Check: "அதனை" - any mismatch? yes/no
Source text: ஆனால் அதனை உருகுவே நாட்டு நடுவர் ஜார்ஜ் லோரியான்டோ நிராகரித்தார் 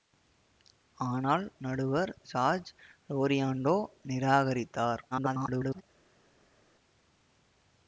yes